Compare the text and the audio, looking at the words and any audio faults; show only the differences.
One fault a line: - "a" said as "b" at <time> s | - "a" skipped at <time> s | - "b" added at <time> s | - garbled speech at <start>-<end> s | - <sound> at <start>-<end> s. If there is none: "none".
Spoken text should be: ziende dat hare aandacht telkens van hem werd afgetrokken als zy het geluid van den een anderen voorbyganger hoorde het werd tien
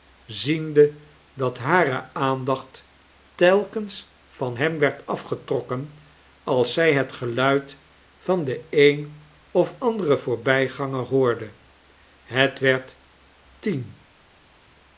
- "of" added at 9.5 s